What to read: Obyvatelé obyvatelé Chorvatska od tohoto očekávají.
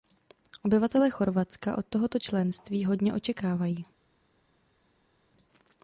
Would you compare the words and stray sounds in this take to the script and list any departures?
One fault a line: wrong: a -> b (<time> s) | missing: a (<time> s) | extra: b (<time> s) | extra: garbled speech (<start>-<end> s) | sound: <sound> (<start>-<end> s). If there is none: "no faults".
missing: obyvatelé (1.1 s)
extra: členství hodně (2.2 s)